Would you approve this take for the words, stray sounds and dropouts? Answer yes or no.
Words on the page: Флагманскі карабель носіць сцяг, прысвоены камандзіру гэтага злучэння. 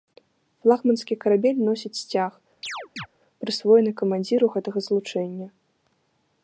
no